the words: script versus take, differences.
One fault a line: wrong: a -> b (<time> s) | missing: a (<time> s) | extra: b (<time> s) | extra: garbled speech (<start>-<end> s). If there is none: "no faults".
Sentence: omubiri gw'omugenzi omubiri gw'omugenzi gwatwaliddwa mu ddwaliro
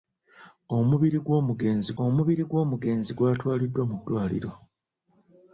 no faults